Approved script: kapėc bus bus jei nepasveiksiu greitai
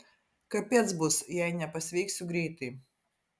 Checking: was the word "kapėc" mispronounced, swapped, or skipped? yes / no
no